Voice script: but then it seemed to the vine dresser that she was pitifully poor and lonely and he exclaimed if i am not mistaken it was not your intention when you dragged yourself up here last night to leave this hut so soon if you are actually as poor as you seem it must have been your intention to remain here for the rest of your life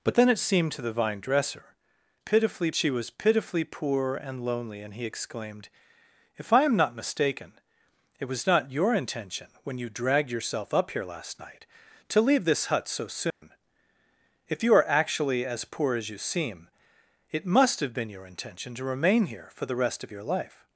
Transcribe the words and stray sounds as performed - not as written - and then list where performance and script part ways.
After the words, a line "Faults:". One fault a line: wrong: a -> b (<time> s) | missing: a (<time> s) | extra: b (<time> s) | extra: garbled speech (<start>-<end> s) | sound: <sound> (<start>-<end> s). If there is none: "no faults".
but then it seemed to the vine dresser pitifully she was pitifully poor and lonely and he exclaimed if i am not mistaken it was not your intention when you dragged yourself up here last night to leave this hut so soon if you are actually as poor as you seem it must have been your intention to remain here for the rest of your life
Faults:
wrong: that -> pitifully (2.2 s)
sound: dropout (13.3-13.4 s)